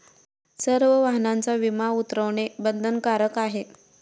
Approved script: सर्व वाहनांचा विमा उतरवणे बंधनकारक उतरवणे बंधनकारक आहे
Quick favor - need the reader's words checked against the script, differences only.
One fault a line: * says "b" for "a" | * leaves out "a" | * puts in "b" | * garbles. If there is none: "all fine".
* leaves out "उतरवणे बंधनकारक"